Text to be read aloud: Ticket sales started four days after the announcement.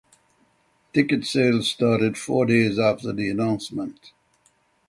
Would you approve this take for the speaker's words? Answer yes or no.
yes